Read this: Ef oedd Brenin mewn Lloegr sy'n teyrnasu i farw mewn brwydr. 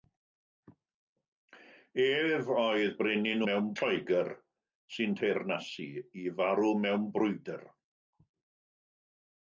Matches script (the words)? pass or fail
pass